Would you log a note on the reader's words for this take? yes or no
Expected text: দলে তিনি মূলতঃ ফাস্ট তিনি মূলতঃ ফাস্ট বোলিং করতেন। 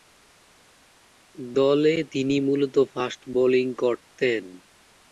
yes